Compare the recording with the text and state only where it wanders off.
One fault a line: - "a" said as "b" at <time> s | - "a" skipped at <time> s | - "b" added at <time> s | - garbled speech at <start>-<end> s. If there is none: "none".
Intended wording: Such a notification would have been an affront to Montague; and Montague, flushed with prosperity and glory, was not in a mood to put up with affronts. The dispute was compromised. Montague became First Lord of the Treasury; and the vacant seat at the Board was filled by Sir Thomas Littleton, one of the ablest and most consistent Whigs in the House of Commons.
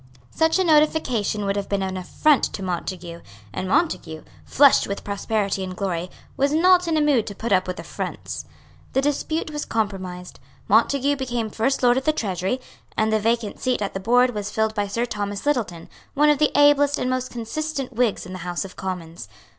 none